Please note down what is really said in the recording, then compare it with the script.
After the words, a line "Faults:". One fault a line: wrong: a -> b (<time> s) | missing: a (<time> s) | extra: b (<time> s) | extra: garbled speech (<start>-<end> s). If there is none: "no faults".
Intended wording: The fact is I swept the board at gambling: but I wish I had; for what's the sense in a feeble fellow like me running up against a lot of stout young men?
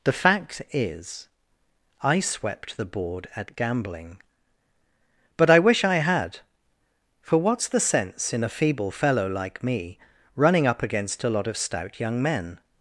The fact is I swept the board at gambling: but I wish I had; for what's the sense in a feeble fellow like me running up against a lot of stout young men?
Faults:
no faults